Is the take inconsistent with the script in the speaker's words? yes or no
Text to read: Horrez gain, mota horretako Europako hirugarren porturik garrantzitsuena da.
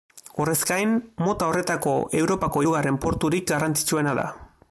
no